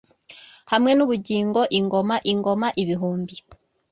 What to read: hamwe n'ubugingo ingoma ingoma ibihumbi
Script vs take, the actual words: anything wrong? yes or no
no